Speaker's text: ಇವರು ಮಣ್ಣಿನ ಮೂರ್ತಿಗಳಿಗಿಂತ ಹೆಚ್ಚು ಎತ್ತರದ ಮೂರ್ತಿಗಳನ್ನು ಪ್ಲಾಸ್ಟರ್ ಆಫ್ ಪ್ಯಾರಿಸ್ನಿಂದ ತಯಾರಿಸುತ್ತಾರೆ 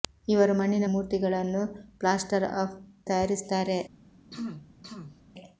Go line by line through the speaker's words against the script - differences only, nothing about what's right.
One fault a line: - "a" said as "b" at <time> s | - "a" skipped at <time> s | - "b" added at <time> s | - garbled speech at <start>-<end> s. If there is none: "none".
- "ಮೂರ್ತಿಗಳಿಗಿಂತ ಹೆಚ್ಚು ಎತ್ತರದ" skipped at 0.8 s
- "ಪ್ಯಾರಿಸ್ನಿಂದ" skipped at 2.8 s